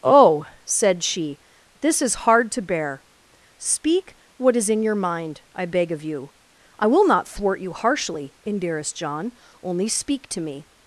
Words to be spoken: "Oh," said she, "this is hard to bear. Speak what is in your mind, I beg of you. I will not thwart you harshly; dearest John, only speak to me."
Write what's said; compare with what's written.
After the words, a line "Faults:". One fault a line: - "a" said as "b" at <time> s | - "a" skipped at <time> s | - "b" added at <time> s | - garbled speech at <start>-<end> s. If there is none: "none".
"Oh," said she, "this is hard to bear. Speak what is in your mind, I beg of you. I will not thwart you harshly; dearest John, only speak to me."
Faults:
none